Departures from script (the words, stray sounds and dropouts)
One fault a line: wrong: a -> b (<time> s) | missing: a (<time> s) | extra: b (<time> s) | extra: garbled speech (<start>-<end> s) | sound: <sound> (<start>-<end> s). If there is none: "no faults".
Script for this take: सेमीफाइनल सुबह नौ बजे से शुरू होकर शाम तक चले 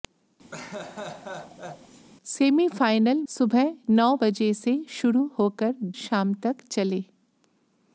sound: laugh (0.5-2.1 s)